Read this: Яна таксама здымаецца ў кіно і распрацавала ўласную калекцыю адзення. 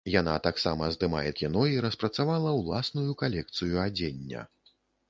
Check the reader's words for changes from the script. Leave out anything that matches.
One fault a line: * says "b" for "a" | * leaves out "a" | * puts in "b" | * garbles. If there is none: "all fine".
* leaves out "ў"